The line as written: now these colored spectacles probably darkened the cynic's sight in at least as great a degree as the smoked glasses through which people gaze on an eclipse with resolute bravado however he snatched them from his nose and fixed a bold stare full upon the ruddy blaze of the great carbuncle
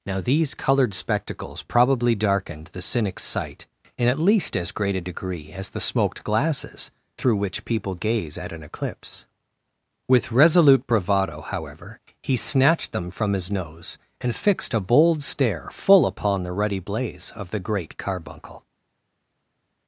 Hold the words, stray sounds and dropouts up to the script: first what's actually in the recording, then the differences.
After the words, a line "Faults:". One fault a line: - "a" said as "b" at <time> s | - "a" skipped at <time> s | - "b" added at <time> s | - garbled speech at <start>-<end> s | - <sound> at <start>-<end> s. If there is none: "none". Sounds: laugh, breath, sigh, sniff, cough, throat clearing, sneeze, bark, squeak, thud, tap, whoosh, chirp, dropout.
now these colored spectacles probably darkened the cynic's sight in at least as great a degree as the smoked glasses through which people gaze at an eclipse with resolute bravado however he snatched them from his nose and fixed a bold stare full upon the ruddy blaze of the great carbuncle
Faults:
- "on" said as "at" at 8.4 s